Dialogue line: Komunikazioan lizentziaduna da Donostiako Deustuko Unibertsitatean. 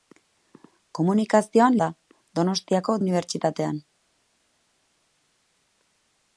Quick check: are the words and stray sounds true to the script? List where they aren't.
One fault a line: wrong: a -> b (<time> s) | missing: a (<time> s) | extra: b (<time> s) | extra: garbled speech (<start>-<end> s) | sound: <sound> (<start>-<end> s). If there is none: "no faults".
missing: lizentziaduna (1.8 s)
missing: Deustuko (3.0 s)